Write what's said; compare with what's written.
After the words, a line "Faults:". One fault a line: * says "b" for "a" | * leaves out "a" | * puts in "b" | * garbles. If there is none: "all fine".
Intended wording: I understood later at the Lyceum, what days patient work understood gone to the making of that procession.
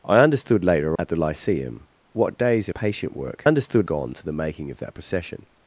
I understood later at the Lyceum, what days patient work understood gone to the making of that procession.
Faults:
all fine